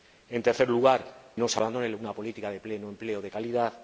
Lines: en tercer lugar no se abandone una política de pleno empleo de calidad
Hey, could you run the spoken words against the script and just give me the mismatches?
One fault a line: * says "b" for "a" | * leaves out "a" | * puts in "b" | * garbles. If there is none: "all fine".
all fine